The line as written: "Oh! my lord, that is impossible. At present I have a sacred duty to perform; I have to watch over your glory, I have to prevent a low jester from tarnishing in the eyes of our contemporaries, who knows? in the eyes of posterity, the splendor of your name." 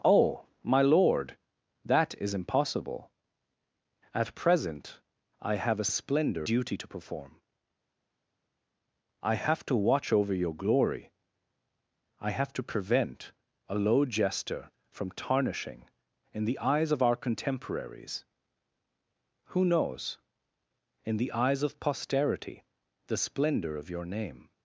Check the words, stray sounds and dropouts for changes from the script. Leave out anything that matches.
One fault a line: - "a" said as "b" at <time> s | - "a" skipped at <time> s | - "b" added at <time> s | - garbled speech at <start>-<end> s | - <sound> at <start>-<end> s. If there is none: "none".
- "sacred" said as "splendor" at 5.9 s